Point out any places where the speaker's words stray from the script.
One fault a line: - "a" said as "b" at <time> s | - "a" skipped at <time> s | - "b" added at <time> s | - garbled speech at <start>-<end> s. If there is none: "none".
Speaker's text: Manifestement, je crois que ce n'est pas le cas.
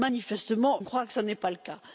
- "je" skipped at 0.8 s